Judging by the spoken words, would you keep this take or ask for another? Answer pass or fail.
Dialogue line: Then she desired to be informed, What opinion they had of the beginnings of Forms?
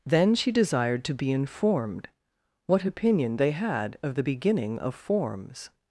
fail